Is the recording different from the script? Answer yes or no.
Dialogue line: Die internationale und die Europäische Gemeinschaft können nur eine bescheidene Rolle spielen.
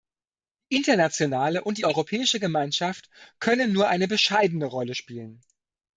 no